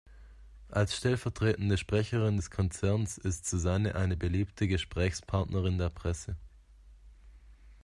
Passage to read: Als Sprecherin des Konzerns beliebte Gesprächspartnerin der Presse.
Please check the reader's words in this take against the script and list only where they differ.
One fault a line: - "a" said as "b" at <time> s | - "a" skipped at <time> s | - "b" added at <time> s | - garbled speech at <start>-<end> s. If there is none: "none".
- "stellvertretende" added at 1.0 s
- "ist Susanne eine" added at 3.2 s